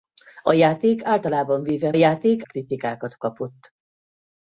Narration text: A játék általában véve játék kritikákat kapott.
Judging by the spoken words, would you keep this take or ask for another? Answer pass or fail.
pass